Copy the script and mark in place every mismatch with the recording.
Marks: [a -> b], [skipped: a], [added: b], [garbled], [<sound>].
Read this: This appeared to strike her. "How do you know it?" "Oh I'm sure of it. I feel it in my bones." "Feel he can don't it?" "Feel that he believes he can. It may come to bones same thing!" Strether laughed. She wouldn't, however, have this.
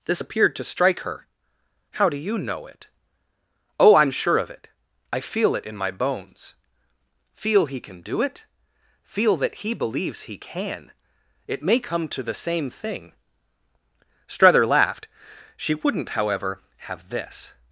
This appeared to strike her. "How do you know it?" "Oh I'm sure of it. I feel it in my bones." "Feel he can [don't -> do] it?" "Feel that he believes he can. It may come to [bones -> the] same thing!" Strether laughed. She wouldn't, however, have this.